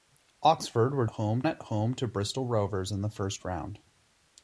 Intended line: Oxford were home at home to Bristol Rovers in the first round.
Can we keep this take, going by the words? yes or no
yes